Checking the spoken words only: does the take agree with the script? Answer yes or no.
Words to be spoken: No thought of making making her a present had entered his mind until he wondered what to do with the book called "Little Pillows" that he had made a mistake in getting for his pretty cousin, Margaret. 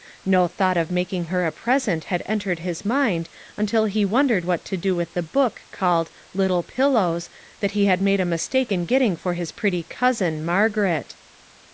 no